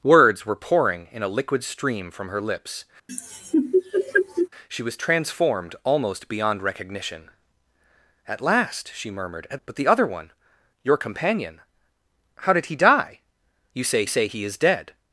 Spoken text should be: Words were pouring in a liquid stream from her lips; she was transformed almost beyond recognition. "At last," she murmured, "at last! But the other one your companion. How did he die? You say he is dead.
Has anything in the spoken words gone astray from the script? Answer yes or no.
yes